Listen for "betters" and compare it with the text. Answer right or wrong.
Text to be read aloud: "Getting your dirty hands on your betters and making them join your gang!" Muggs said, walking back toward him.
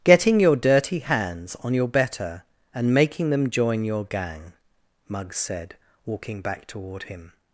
wrong